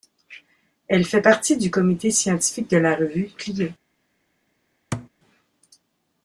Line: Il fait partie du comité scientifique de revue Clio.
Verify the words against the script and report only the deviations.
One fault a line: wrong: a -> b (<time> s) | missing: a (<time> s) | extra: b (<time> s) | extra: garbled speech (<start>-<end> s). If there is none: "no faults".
wrong: Il -> Elle (0.9 s)
extra: la (2.8 s)